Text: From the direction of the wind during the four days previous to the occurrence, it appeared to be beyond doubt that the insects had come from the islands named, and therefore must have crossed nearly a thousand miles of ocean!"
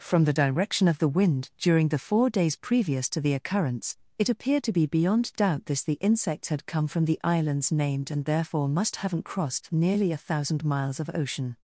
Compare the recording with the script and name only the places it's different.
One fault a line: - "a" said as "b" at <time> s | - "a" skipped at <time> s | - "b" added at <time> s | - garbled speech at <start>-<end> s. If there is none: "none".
- "that" said as "this" at 5.7 s
- "have" said as "haven't" at 9.0 s